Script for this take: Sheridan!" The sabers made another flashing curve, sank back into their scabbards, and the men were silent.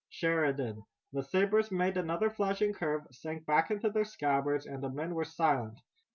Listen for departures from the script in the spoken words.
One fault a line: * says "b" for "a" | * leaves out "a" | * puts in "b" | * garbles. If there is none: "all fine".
all fine